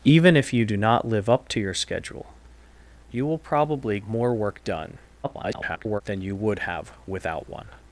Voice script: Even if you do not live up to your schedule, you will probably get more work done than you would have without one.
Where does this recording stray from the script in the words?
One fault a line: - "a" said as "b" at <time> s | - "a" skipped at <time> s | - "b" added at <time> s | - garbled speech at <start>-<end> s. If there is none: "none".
- "get" skipped at 4.0 s
- garbled speech at 5.2-6.0 s